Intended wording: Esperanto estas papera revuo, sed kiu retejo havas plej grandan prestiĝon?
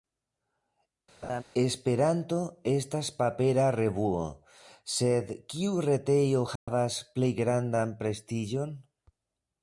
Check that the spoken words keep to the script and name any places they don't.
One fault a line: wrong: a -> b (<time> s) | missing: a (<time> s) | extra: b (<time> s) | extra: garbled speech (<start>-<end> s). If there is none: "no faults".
no faults